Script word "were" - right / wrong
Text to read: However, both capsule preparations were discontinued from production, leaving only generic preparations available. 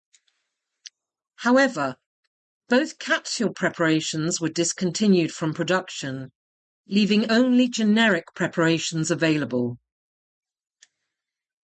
right